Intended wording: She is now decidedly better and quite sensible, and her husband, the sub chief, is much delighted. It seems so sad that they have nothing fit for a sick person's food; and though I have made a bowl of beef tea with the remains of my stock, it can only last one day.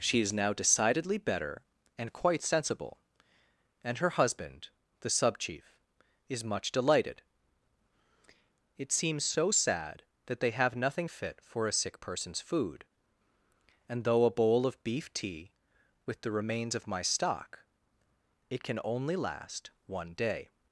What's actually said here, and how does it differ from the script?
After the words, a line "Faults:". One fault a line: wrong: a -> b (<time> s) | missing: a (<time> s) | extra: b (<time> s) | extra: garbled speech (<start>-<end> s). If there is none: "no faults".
She is now decidedly better and quite sensible, and her husband, the sub chief, is much delighted. It seems so sad that they have nothing fit for a sick person's food; and though a bowl of beef tea with the remains of my stock, it can only last one day.
Faults:
missing: I have made (14.3 s)